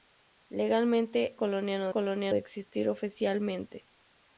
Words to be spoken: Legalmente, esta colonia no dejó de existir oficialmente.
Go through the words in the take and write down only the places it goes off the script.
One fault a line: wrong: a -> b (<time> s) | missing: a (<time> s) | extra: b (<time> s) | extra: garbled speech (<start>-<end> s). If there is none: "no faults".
missing: esta (1.4 s)
wrong: dejó -> colonia (1.9 s)